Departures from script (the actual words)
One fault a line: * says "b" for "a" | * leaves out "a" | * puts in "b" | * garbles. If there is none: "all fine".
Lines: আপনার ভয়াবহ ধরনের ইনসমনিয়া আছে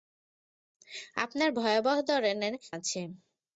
* leaves out "ইনসমনিয়া"